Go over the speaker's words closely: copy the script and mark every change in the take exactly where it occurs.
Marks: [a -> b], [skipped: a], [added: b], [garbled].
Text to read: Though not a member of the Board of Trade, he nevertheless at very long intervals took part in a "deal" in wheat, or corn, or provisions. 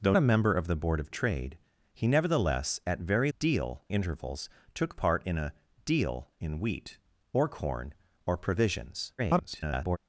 Though [skipped: not] a member of the Board of Trade, he nevertheless at very [long -> deal] intervals took part in a "deal" in wheat, or corn, or provisions. [garbled]